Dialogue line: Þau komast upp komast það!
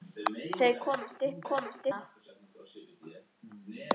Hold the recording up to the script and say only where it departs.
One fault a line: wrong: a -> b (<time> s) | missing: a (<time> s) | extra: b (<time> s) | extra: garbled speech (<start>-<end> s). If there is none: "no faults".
no faults